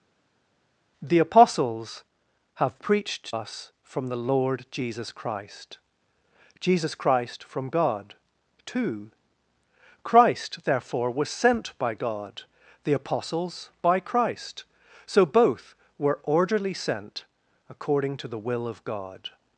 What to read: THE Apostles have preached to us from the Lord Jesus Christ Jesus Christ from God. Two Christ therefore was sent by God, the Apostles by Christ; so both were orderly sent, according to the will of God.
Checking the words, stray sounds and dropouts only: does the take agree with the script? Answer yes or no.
no